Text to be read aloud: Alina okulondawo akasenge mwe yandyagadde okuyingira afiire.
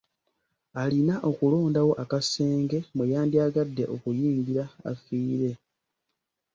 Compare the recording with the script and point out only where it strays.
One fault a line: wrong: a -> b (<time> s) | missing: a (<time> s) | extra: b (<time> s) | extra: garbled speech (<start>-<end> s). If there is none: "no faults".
no faults